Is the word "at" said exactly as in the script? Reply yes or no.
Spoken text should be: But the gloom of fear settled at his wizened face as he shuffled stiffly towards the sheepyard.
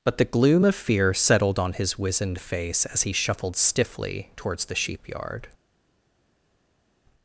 no